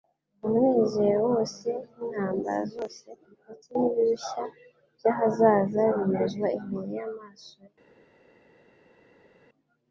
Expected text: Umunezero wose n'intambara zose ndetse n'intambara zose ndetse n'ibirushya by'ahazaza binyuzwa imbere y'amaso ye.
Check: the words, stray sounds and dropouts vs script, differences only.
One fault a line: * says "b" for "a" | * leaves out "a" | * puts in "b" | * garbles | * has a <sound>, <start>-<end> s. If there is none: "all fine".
* leaves out "n'intambara zose ndetse"